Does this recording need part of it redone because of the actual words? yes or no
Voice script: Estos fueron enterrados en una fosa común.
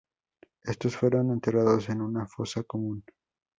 no